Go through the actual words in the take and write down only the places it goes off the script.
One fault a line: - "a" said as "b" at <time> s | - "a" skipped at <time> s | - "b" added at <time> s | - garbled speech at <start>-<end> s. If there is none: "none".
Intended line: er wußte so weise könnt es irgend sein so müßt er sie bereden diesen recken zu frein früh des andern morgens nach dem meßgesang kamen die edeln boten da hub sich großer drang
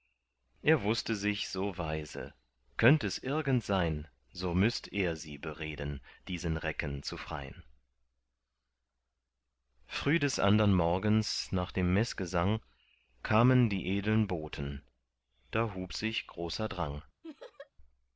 - "sich" added at 1.1 s